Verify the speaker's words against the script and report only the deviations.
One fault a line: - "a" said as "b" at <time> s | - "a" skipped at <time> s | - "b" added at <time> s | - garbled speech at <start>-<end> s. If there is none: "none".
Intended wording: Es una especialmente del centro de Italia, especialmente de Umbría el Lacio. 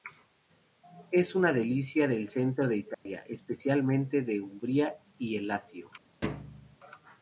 - "especialmente" said as "delicia" at 1.5 s
- "y" added at 5.2 s